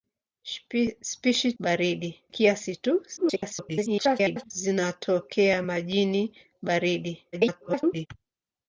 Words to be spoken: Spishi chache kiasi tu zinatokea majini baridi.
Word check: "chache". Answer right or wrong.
wrong